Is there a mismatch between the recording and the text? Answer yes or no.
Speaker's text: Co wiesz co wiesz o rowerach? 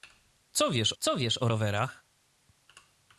no